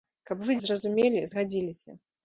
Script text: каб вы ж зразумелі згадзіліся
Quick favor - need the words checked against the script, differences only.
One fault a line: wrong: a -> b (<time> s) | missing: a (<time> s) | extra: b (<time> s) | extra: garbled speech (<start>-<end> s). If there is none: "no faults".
no faults